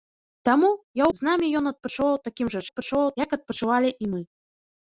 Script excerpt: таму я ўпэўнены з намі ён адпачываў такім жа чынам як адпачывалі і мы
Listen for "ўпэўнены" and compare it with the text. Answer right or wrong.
wrong